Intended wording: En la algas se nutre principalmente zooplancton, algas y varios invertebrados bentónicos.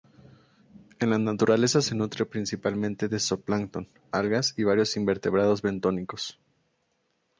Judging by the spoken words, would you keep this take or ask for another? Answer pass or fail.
fail